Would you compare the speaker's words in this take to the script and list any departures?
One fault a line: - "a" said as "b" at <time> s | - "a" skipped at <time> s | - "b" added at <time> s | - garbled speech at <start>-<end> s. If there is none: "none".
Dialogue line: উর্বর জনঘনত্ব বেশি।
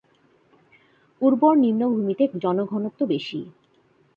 - "নিম্নভূমিতে" added at 1.6 s